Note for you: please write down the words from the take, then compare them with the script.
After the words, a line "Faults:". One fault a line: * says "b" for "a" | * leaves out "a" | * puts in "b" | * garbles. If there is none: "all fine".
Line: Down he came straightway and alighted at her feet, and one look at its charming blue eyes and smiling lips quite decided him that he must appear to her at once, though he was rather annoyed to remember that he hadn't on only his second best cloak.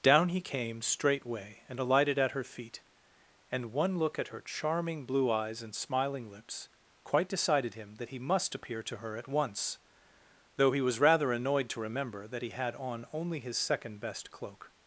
Down he came straightway and alighted at her feet, and one look at her charming blue eyes and smiling lips quite decided him that he must appear to her at once, though he was rather annoyed to remember that he had on only his second best cloak.
Faults:
* says "her" for "its"
* says "had" for "hadn't"